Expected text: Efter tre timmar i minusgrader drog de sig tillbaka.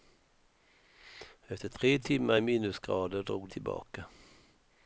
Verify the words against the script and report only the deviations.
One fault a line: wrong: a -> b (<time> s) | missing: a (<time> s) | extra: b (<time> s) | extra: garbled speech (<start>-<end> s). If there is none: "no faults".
missing: de sig (3.5 s)